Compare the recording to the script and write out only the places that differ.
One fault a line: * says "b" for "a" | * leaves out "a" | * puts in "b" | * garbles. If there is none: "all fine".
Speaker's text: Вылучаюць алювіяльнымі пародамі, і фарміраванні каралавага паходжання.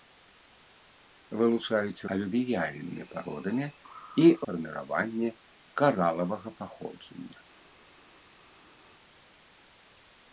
all fine